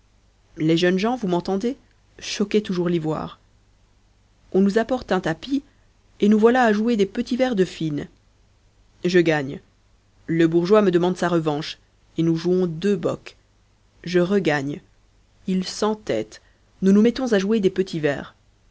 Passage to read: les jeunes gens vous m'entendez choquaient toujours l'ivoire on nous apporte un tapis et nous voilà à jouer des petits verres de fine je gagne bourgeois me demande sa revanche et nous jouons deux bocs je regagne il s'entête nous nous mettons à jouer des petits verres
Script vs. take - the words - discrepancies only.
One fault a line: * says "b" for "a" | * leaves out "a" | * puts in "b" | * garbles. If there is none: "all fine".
* puts in "le"